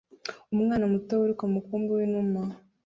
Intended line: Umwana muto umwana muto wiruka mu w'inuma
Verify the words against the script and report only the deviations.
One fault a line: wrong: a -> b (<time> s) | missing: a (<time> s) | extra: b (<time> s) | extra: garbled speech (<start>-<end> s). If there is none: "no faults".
missing: umwana muto (1.1 s)
extra: mukumbi (1.6 s)